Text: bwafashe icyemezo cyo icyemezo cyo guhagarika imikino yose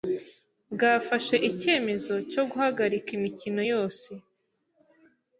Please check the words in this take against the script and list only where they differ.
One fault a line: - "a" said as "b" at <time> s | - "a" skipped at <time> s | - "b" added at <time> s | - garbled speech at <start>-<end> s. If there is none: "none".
- "icyemezo cyo" skipped at 2.4 s